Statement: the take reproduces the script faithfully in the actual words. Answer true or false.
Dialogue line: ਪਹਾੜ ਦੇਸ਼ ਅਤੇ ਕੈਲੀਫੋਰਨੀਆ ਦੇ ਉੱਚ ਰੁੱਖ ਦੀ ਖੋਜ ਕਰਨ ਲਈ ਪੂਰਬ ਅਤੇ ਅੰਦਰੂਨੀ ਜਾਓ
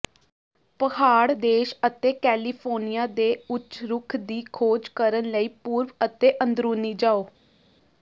true